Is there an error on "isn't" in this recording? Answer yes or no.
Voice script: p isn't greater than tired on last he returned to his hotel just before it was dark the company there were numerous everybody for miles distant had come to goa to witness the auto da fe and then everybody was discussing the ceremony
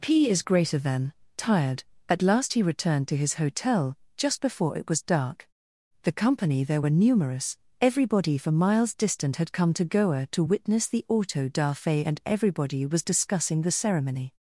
yes